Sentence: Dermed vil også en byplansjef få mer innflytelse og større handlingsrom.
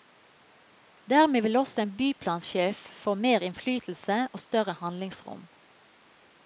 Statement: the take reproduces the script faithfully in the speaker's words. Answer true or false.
true